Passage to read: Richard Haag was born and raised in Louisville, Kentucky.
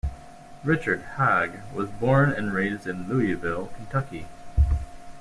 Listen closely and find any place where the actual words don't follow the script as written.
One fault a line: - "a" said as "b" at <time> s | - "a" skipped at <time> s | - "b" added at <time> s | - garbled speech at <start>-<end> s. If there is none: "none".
none